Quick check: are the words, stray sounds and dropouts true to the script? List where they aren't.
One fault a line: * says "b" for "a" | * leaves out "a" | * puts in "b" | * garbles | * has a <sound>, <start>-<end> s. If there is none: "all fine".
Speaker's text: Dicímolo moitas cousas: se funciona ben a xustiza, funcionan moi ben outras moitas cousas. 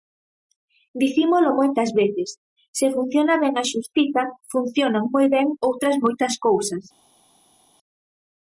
* says "veces" for "cousas"